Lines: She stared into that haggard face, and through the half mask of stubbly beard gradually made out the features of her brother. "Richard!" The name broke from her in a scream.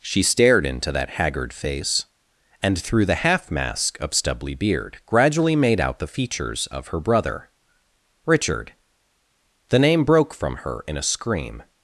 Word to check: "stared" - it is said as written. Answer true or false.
true